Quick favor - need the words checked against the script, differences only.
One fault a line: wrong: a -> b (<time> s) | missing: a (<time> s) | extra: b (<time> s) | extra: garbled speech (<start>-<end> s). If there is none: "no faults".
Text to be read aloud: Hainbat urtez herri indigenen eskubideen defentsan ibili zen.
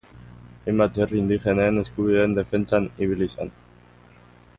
missing: urtez (0.9 s)